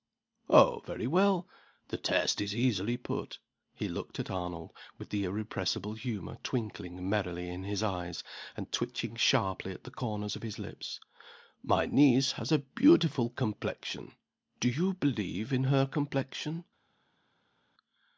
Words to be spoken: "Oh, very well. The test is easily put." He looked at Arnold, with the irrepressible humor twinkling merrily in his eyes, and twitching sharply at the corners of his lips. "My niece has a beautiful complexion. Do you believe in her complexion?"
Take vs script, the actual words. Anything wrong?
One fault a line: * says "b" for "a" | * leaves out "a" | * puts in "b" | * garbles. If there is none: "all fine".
all fine